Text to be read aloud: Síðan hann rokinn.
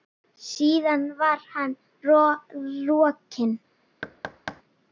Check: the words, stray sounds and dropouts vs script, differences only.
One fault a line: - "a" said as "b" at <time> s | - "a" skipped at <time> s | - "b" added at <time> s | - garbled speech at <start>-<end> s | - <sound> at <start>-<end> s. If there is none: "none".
- "var" added at 1.2 s
- thud at 4.0-4.6 s